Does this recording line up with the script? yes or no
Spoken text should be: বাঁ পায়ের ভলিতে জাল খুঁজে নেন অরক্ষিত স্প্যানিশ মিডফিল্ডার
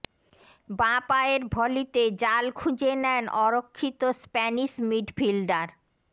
yes